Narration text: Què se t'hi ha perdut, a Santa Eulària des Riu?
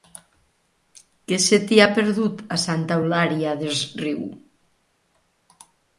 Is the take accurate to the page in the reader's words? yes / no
yes